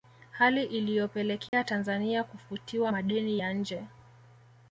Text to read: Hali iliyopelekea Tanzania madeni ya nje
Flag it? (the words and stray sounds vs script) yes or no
yes